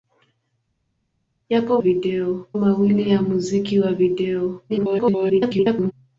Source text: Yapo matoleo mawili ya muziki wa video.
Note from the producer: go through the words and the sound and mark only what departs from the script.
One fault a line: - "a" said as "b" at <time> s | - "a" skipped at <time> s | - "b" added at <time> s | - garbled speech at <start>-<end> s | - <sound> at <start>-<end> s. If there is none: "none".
- "matoleo" said as "video" at 1.8 s
- garbled speech at 4.7-5.9 s